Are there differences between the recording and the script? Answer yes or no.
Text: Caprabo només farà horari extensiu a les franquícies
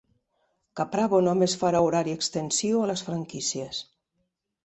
no